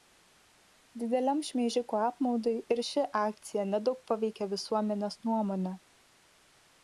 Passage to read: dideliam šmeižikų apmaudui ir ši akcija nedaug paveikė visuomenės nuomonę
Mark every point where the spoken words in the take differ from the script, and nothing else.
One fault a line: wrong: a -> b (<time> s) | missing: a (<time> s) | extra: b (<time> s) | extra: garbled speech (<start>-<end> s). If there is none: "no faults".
no faults